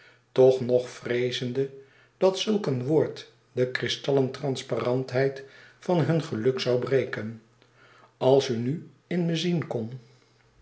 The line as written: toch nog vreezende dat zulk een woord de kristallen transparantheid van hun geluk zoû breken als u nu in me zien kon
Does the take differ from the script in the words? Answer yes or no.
no